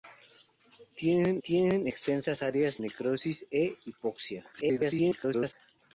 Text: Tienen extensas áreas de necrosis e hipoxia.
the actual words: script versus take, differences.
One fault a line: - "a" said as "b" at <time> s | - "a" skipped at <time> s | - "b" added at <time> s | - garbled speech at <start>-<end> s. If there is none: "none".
- "tienen" added at 1.4 s
- "de" skipped at 2.8 s
- garbled speech at 4.5-5.5 s